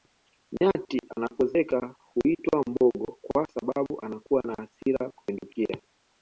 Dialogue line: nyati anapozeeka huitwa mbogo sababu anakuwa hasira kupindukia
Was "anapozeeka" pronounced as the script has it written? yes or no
yes